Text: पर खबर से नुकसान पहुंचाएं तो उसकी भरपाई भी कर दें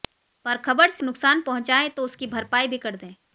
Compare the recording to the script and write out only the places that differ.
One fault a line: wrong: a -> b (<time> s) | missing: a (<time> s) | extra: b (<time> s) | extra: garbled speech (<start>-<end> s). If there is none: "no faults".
no faults